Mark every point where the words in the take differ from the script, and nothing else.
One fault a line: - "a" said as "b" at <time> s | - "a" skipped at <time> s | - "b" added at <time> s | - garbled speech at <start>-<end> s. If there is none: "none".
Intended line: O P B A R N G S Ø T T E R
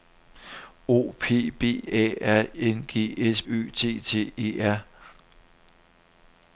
none